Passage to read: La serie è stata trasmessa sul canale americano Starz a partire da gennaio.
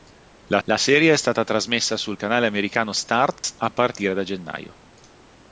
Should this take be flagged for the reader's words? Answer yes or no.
yes